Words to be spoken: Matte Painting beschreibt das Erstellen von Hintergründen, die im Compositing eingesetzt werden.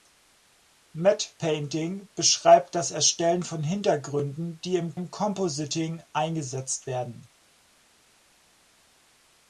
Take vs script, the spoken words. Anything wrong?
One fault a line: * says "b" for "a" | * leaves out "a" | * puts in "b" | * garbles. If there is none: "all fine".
* puts in "im"